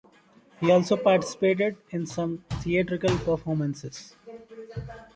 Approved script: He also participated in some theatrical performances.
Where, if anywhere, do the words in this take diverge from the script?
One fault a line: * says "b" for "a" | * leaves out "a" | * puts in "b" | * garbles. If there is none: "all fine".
all fine